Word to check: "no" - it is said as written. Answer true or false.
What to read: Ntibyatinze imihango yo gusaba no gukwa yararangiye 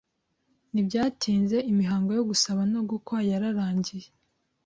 true